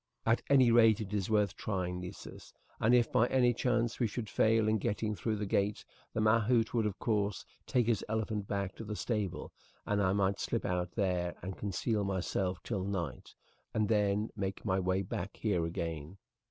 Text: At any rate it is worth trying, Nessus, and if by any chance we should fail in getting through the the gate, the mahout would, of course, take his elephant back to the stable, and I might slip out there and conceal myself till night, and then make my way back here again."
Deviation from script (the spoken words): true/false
true